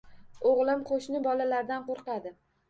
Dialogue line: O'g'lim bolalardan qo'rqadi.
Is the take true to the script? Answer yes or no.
no